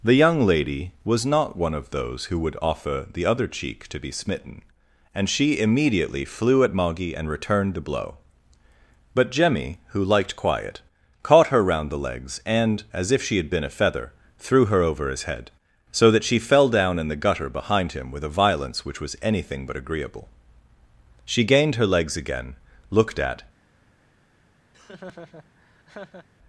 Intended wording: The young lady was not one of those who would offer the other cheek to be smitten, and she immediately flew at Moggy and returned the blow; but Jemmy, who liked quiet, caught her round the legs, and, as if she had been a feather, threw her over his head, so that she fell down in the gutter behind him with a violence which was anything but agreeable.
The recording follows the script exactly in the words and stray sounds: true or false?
false